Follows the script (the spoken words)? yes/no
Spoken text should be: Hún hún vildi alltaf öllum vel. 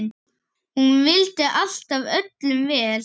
no